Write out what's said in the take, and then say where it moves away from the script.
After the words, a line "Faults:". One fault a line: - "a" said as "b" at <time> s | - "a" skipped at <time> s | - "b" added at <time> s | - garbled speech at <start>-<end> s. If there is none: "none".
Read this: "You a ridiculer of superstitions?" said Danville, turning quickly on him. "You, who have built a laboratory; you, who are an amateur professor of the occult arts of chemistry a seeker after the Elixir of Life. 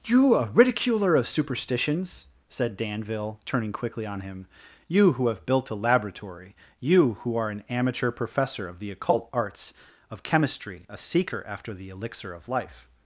"You a ridiculer of superstitions?" said Danville, turning quickly on him. "You, who have built a laboratory; you, who are an amateur professor of the occult arts of chemistry a seeker after the Elixir of Life.
Faults:
none